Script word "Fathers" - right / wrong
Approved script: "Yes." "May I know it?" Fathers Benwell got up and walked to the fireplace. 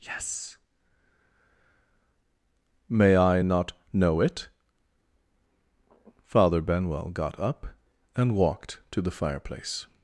wrong